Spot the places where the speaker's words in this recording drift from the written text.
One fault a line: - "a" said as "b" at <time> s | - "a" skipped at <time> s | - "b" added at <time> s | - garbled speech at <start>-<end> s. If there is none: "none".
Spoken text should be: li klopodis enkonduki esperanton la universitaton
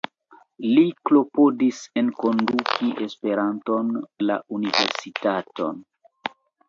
none